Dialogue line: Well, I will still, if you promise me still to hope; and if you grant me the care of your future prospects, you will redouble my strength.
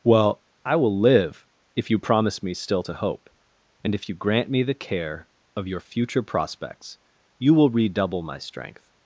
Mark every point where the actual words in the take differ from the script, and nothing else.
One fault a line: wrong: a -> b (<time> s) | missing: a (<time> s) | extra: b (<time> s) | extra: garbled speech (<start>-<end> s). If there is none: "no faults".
wrong: still -> live (1.0 s)